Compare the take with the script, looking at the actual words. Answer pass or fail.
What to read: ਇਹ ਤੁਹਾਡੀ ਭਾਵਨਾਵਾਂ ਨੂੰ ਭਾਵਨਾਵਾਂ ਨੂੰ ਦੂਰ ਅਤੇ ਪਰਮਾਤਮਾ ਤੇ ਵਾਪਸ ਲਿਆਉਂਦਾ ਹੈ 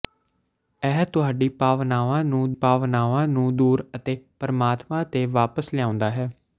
pass